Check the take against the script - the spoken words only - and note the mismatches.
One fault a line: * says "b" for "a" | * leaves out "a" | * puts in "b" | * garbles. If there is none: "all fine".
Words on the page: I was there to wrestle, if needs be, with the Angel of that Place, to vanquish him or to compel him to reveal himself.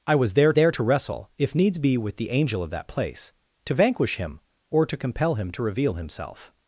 * puts in "there"